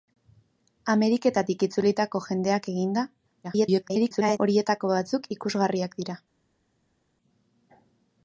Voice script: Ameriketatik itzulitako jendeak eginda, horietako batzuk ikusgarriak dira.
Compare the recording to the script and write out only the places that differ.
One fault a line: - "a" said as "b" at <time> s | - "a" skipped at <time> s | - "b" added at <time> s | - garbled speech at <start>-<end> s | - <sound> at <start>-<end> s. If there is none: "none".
- garbled speech at 3.4-4.4 s